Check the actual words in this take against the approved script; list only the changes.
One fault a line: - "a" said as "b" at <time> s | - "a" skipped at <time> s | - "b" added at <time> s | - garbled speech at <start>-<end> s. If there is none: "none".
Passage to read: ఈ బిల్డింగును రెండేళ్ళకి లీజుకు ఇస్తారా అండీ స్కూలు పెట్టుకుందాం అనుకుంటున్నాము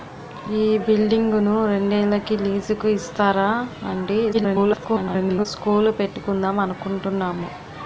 - garbled speech at 4.3-5.5 s